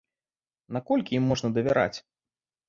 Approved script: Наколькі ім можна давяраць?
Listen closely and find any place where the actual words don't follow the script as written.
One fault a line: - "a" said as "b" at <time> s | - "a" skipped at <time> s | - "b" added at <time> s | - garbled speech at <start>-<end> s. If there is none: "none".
none